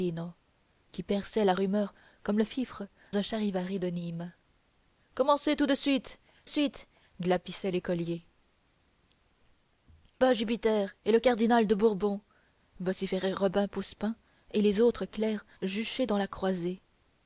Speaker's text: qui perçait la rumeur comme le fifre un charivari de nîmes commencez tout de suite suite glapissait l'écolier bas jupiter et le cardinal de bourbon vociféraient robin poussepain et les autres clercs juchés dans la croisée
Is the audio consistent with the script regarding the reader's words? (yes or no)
yes